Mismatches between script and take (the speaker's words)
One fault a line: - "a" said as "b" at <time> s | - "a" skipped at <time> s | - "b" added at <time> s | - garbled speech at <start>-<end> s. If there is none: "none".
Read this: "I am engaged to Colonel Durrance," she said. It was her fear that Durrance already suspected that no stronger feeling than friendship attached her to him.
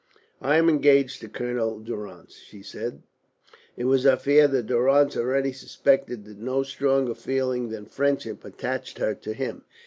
none